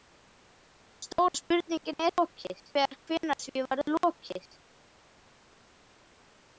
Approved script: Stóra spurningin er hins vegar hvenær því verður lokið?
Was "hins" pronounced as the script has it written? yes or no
no